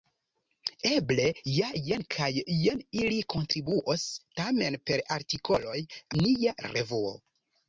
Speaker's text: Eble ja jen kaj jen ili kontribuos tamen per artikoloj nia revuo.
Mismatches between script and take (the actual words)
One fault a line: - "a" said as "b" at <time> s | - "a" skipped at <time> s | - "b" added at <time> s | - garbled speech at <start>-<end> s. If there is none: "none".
none